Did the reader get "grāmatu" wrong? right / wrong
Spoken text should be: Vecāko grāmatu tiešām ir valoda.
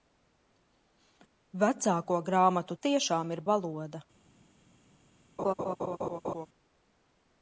right